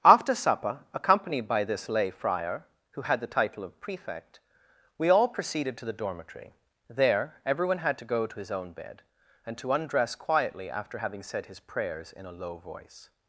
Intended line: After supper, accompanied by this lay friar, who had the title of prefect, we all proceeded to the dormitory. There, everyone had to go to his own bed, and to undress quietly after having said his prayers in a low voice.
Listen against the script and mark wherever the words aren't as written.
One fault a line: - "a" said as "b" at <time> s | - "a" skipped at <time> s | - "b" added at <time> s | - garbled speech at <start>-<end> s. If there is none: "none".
none